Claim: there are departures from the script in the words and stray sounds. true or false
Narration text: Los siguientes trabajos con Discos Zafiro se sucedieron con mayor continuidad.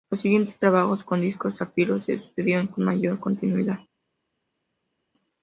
false